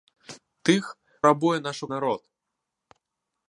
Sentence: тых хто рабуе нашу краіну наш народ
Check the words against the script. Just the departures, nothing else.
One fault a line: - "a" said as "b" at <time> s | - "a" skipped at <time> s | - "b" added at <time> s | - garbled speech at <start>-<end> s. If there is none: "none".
- "хто" skipped at 0.8 s
- "краіну наш" skipped at 1.9 s